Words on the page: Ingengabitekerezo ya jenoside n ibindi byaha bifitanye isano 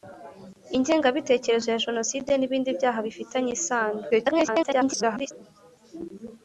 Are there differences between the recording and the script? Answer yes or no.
yes